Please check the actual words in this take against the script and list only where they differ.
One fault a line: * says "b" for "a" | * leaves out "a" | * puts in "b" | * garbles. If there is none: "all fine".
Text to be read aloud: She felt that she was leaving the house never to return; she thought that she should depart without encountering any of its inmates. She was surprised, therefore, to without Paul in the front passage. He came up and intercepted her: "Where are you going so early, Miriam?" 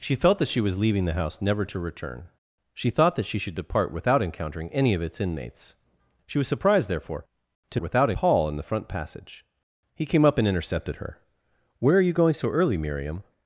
all fine